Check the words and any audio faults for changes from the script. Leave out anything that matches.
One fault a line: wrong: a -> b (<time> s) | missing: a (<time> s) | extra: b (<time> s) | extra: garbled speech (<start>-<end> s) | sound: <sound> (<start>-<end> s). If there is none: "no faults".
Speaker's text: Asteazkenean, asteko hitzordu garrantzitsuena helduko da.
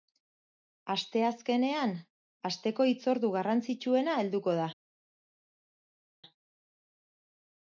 no faults